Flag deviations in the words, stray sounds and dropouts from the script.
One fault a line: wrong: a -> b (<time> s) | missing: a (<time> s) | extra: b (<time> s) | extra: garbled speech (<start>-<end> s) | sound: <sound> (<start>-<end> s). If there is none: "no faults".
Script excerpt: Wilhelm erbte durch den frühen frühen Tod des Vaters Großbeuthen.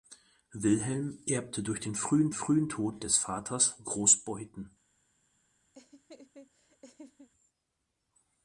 sound: laugh (5.7-7.3 s)